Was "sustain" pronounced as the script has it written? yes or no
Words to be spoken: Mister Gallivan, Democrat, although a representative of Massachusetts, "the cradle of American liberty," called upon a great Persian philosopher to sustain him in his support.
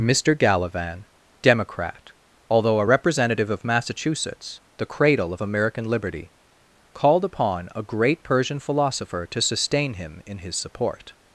yes